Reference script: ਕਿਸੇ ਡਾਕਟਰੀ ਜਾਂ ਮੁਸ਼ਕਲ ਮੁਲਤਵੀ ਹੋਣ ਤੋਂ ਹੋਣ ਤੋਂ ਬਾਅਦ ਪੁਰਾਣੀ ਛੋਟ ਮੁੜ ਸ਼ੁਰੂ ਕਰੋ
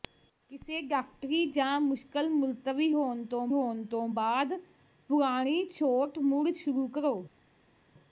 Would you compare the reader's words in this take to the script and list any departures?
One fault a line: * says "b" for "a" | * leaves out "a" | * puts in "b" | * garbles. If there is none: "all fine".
all fine